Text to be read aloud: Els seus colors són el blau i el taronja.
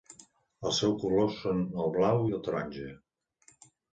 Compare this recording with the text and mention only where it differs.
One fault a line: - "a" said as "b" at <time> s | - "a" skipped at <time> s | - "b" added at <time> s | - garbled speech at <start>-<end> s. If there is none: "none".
none